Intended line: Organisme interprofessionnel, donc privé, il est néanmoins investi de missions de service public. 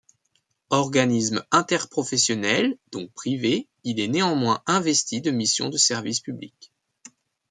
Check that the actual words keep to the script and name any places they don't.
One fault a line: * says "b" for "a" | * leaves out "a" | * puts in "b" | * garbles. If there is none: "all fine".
all fine